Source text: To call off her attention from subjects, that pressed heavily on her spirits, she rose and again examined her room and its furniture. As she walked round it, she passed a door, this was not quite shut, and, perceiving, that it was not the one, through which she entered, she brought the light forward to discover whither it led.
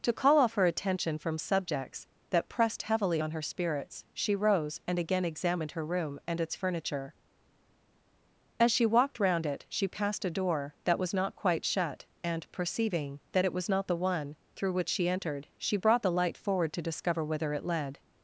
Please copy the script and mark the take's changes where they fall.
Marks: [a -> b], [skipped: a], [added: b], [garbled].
To call off her attention from subjects, that pressed heavily on her spirits, she rose and again examined her room and its furniture. As she walked round it, she passed a door, [this -> that] was not quite shut, and, perceiving, that it was not the one, through which she entered, she brought the light forward to discover whither it led.